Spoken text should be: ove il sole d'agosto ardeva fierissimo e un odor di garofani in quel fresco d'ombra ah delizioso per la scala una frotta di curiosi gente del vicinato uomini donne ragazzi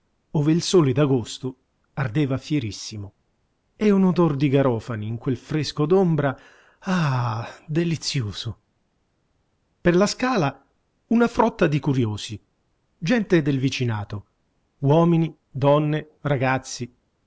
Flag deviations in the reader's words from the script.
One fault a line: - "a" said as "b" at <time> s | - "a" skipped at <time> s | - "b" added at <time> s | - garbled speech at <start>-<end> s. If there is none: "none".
none